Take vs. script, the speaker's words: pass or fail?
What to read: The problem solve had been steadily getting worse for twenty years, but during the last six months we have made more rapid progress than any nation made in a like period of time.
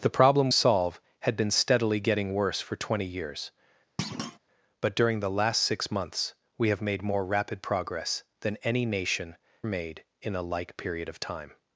pass